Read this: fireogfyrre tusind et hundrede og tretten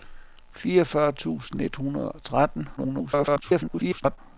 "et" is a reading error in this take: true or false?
false